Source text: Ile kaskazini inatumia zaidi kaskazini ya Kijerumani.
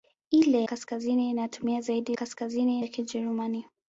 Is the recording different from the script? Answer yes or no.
no